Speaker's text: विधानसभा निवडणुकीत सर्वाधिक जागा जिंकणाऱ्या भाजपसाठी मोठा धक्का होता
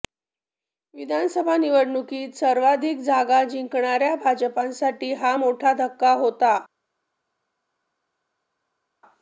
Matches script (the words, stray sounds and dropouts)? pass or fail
fail